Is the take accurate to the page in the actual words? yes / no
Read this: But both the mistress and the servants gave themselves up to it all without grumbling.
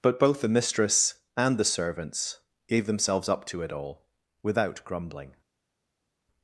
yes